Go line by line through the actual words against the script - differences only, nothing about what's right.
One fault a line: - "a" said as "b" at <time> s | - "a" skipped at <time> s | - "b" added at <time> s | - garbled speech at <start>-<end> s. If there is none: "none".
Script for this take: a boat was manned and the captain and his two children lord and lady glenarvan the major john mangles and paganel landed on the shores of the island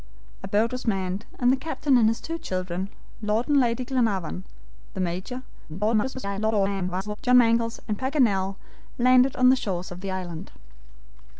- garbled speech at 5.7-7.2 s